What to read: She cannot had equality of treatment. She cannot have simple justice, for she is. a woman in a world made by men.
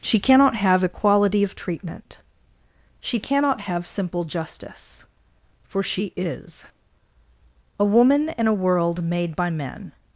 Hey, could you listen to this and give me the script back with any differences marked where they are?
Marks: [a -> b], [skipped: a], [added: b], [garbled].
She cannot [had -> have] equality of treatment. She cannot have simple justice, for she is. a woman in a world made by men.